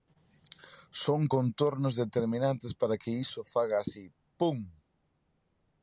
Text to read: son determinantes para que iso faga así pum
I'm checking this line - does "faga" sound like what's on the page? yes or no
yes